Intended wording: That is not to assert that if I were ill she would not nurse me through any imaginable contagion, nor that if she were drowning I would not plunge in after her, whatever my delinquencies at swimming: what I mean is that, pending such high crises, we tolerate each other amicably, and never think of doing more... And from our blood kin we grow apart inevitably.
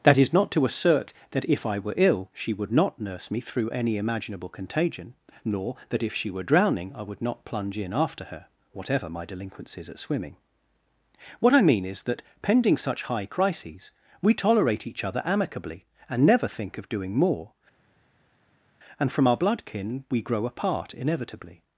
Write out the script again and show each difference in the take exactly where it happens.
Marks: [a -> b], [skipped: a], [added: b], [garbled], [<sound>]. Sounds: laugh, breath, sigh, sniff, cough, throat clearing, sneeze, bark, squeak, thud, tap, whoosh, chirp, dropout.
That is not to assert that if I were ill she would not nurse me through any imaginable contagion, nor that if she were drowning I would not plunge in after her, whatever my delinquencies at swimming: what I mean is that, pending such high crises, we tolerate each other amicably, and never think of doing more... And from our blood kin we grow apart inevitably.